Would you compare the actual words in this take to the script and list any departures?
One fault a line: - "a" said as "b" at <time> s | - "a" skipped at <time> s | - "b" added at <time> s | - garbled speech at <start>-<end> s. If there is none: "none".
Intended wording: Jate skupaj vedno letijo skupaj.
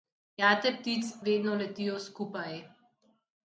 - "skupaj" said as "ptic" at 0.7 s